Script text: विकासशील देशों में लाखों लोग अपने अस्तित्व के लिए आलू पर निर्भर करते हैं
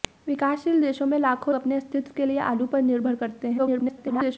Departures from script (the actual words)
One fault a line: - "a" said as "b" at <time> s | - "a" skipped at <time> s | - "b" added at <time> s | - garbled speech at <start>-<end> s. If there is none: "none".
- "लोग" skipped at 1.6 s
- garbled speech at 3.6-4.4 s